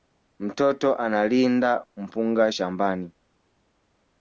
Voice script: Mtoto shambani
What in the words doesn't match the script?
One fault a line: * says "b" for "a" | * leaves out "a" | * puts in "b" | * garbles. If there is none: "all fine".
* puts in "analinda mpunga"